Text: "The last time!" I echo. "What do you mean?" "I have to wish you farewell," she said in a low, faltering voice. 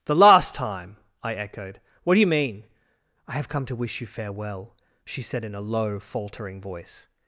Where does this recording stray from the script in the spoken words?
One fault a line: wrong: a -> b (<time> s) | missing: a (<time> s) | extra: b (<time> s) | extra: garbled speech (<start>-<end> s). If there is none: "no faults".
wrong: echo -> echoed (1.4 s)
extra: come (3.5 s)